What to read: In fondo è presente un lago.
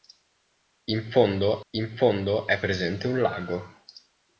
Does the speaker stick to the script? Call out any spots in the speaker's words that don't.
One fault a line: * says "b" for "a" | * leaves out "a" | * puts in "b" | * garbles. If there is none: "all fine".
* puts in "in fondo"